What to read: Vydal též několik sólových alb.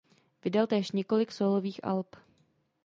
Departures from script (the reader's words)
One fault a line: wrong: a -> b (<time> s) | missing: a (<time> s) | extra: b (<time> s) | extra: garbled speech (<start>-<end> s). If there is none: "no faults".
no faults